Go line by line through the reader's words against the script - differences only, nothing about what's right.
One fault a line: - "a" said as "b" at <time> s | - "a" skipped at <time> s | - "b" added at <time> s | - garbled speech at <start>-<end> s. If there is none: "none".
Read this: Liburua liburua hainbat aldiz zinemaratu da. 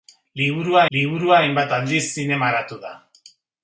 none